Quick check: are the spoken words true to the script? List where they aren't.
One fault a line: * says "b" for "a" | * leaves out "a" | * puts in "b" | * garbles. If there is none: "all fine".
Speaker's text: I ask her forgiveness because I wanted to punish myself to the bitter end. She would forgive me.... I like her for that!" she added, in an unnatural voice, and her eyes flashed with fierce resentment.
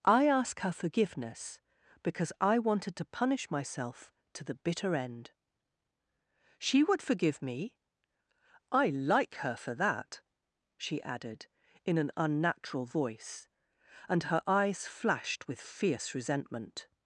all fine